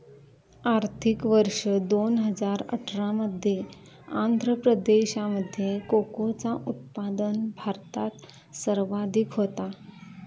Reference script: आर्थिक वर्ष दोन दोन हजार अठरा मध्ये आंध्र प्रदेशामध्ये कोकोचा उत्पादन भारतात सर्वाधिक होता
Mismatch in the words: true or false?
true